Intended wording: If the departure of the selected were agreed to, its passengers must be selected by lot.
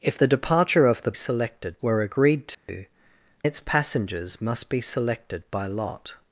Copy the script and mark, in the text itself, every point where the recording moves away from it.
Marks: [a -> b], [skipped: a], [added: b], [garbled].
If the departure of the selected were agreed to, its passengers must be selected by lot.